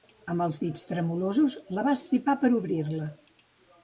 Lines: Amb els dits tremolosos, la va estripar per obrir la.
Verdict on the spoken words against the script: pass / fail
pass